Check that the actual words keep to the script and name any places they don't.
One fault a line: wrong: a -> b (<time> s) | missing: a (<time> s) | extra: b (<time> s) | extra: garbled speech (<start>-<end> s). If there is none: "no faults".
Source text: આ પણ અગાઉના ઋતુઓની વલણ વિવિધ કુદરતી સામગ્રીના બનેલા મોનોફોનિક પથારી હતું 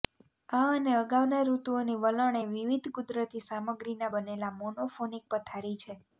wrong: પણ -> અને (0.7 s)
extra: એ (2.4 s)
wrong: હતું -> છે (5.8 s)